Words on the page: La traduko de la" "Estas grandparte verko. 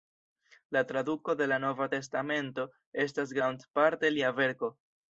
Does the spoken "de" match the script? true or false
true